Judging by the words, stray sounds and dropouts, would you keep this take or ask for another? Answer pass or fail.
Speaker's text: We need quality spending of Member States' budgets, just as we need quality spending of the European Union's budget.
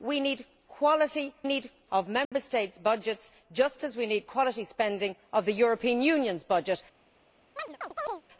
fail